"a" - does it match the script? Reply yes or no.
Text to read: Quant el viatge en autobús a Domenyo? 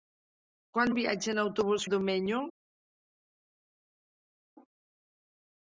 yes